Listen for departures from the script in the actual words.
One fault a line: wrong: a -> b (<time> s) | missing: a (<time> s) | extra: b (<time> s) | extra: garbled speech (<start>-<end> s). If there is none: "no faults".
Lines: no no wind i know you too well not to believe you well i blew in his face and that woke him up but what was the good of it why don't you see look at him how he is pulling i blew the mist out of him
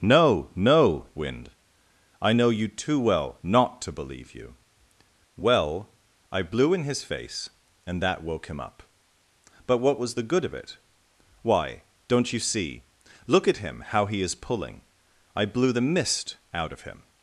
no faults